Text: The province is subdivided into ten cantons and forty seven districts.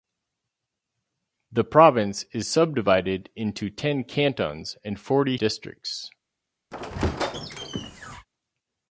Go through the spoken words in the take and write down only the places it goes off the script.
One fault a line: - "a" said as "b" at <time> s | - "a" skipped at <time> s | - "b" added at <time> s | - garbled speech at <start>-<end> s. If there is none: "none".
- "seven" skipped at 5.4 s